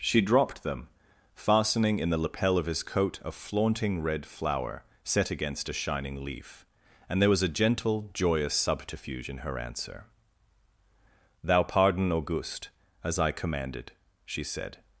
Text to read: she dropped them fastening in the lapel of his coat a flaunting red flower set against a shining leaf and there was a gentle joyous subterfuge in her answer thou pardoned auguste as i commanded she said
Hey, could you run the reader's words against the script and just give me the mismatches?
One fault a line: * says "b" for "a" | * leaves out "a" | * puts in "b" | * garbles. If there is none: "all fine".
* says "pardon" for "pardoned"